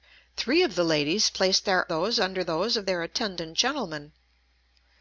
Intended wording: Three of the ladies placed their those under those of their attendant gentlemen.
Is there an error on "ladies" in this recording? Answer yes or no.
no